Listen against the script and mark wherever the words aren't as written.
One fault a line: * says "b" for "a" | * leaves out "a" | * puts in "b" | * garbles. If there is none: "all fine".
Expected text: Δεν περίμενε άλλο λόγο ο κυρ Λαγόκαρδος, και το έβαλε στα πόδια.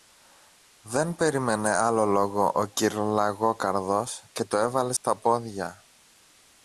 all fine